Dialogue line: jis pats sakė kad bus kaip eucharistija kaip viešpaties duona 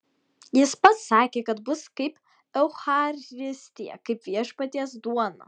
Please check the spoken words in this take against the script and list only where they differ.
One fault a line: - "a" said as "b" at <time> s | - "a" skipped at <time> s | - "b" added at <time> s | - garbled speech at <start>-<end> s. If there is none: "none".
none